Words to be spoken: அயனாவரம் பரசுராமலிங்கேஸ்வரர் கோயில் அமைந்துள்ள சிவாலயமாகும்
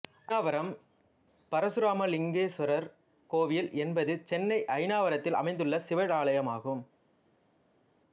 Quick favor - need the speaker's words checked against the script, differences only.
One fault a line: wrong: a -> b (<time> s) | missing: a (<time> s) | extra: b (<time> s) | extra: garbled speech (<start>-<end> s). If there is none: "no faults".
extra: என்பது சென்னை அயனாவரத்தில் (3.8 s)